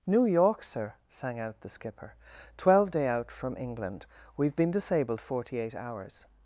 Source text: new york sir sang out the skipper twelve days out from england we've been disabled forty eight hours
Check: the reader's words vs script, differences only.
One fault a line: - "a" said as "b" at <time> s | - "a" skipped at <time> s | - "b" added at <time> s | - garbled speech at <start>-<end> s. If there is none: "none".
- "days" said as "day" at 2.9 s